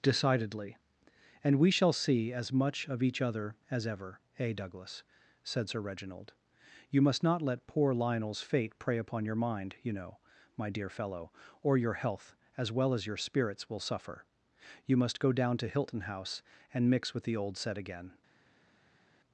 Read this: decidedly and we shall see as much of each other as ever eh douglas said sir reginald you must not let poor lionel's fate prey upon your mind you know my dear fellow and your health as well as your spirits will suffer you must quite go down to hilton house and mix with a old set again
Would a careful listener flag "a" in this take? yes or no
yes